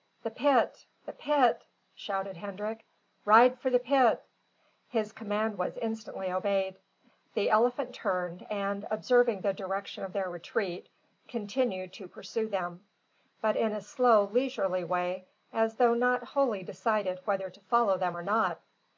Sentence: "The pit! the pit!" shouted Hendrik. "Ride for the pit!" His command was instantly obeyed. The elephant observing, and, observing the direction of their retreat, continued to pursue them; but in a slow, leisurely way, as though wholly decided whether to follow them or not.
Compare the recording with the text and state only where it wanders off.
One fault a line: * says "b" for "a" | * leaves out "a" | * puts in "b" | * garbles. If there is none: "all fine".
* says "turned" for "observing"
* puts in "not"